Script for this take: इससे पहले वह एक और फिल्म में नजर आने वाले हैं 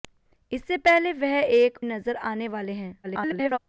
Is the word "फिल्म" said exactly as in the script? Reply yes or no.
no